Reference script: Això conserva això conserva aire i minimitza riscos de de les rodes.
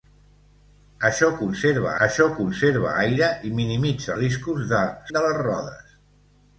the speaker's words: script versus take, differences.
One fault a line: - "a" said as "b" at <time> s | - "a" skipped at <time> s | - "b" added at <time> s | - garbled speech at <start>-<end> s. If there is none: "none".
none